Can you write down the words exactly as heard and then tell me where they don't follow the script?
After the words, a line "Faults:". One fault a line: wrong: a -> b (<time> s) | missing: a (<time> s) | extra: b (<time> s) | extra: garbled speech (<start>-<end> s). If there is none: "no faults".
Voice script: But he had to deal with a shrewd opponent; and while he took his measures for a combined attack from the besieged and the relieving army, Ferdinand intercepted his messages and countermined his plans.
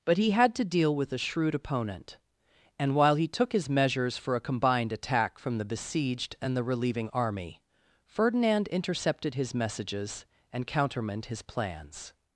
But he had to deal with a shrewd opponent; and while he took his measures for a combined attack from the besieged and the relieving army, Ferdinand intercepted his messages and countermined his plans.
Faults:
no faults